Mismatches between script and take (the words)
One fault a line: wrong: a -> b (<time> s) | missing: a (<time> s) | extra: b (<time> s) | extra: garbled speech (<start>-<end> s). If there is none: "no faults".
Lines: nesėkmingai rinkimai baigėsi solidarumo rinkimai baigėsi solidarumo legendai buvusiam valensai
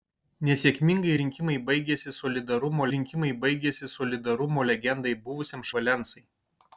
no faults